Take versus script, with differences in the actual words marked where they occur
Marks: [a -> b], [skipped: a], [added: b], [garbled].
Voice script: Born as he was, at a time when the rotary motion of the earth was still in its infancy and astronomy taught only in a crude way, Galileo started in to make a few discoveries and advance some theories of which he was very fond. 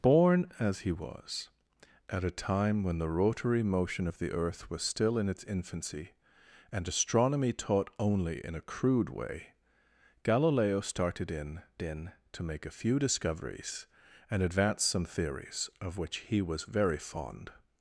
Born as he was, at a time when the rotary motion of the earth was still in its infancy and astronomy taught only in a crude way, Galileo started in [added: in] to make a few discoveries and advance some theories of which he was very fond.